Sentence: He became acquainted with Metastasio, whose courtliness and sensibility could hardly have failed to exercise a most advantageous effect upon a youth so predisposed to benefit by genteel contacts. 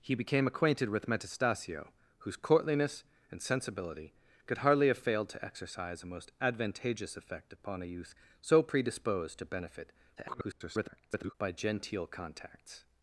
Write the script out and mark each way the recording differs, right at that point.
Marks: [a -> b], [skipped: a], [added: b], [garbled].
He became acquainted with Metastasio, whose courtliness and sensibility could hardly have failed to exercise a most advantageous effect upon a youth so predisposed to benefit [garbled] by genteel contacts.